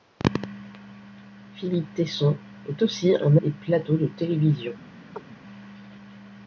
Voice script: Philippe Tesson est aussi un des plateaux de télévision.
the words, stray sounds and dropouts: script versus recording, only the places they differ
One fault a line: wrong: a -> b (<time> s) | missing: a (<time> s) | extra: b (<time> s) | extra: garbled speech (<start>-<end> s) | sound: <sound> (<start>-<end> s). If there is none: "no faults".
sound: chirp (5.2-5.2 s)